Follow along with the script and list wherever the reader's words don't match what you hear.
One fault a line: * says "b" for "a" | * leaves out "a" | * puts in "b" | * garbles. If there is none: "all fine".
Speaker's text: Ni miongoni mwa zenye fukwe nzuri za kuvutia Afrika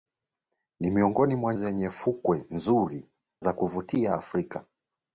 all fine